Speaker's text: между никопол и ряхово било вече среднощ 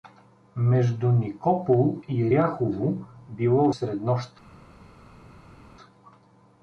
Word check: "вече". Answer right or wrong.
wrong